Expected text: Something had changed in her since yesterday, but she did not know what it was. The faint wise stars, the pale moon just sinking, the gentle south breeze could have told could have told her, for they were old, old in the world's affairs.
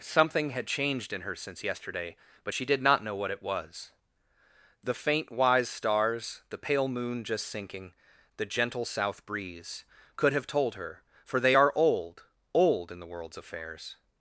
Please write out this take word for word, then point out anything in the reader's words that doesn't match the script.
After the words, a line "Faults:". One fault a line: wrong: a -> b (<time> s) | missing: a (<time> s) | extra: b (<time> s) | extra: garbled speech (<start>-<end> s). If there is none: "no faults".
Something had changed in her since yesterday, but she did not know what it was. The faint wise stars, the pale moon just sinking, the gentle south breeze could have told her, for they are old, old in the world's affairs.
Faults:
missing: could have told (10.8 s)
wrong: were -> are (11.5 s)